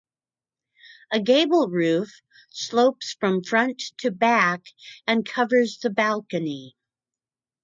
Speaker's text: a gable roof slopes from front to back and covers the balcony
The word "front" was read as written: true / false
true